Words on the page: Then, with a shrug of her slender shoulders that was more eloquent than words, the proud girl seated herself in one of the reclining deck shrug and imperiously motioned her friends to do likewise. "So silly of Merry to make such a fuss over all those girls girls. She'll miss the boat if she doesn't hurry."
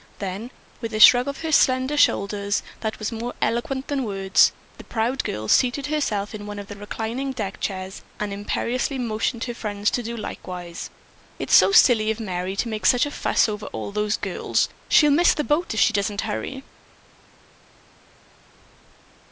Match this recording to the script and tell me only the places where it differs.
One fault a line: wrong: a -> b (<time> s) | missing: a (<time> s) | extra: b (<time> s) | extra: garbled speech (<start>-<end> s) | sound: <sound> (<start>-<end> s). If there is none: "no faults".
wrong: shrug -> chairs (7.6 s)
extra: It's (11.4 s)
missing: girls (14.7 s)